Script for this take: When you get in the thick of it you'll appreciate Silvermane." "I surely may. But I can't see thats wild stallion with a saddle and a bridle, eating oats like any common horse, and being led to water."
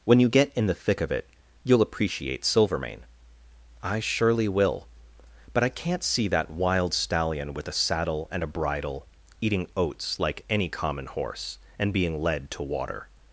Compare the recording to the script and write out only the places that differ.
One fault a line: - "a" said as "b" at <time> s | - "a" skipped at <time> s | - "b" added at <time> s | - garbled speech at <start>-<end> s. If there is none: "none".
- "may" said as "will" at 4.5 s
- "thats" said as "that" at 6.3 s